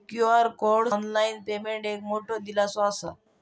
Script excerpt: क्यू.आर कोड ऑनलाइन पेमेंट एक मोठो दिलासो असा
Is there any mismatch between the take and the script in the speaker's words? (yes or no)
no